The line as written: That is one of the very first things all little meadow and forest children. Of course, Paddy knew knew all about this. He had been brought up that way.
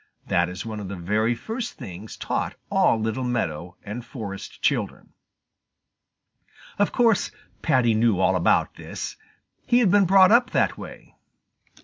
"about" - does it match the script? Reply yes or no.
yes